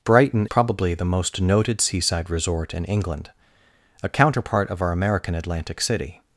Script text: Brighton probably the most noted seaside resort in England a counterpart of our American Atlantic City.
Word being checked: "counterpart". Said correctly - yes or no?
yes